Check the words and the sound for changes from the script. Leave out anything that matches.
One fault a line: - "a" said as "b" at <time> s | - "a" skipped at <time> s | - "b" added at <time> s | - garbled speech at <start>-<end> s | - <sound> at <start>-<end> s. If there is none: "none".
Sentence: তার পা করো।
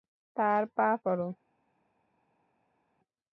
none